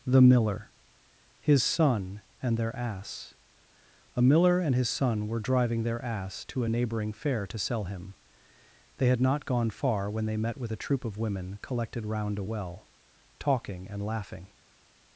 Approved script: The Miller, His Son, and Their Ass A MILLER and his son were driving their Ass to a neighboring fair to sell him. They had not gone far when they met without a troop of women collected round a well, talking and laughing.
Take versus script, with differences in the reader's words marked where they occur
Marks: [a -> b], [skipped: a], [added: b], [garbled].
The Miller, His Son, and Their Ass A MILLER and his son were driving their Ass to a neighboring fair to sell him. They had not gone far when they met [without -> with] a troop of women collected round a well, talking and laughing.